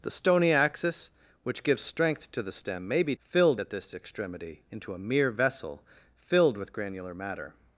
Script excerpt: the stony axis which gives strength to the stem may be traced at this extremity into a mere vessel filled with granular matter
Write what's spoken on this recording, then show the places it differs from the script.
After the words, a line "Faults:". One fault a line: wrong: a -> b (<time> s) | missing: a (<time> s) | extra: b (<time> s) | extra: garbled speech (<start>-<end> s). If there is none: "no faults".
the stony axis which gives strength to the stem may be filled at this extremity into a mere vessel filled with granular matter
Faults:
wrong: traced -> filled (3.2 s)